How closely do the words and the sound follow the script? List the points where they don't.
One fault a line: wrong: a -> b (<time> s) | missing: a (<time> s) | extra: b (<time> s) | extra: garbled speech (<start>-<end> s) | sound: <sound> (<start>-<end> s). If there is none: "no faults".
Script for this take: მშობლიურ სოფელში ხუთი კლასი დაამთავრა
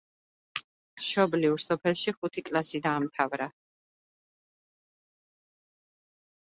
no faults